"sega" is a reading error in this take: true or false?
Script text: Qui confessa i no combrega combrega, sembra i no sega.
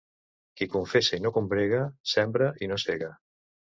false